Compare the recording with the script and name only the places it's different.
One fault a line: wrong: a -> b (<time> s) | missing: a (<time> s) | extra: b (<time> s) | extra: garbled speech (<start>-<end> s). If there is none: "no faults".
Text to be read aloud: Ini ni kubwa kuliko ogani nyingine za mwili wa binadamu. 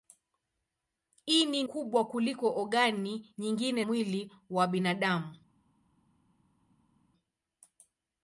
missing: ni (1.6 s)
missing: za (3.8 s)